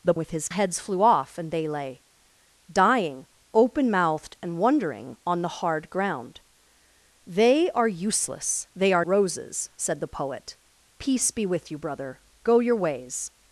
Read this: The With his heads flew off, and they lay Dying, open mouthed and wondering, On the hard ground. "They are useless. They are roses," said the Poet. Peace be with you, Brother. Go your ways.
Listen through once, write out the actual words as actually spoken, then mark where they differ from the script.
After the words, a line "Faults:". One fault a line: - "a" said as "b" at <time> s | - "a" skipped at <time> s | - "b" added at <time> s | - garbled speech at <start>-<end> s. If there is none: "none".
The With his heads flew off, and they lay Dying, open mouthed and wondering, On the hard ground. "They are useless. They are roses," said the Poet. Peace be with you, Brother. Go your ways.
Faults:
none